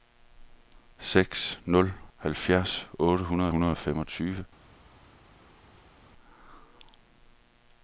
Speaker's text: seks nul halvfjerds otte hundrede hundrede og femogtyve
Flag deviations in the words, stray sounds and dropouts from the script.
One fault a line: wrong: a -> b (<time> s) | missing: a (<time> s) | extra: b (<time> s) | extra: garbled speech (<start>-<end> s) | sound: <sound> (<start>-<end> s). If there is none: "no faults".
no faults